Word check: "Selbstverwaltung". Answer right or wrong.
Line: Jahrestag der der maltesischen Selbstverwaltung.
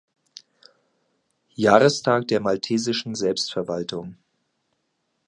right